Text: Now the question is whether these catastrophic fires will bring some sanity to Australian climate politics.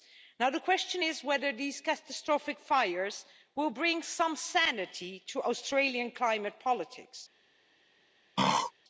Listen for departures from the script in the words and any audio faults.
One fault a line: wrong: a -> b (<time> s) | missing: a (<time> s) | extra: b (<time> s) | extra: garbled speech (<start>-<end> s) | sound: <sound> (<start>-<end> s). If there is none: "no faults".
sound: throat clearing (8.4-8.7 s)